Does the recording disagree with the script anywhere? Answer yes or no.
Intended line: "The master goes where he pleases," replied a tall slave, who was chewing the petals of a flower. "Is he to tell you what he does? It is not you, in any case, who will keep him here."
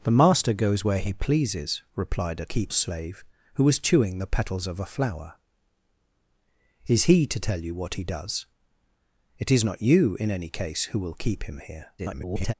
yes